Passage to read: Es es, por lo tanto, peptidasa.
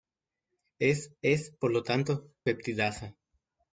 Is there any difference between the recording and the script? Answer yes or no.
no